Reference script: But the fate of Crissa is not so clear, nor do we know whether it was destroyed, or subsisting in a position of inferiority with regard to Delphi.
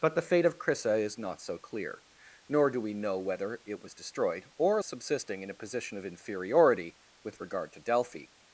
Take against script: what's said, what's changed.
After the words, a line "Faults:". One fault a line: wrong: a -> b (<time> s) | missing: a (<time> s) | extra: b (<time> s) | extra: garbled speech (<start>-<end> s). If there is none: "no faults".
But the fate of Crissa is not so clear, nor do we know whether it was destroyed, or subsisting in a position of inferiority with regard to Delphi.
Faults:
no faults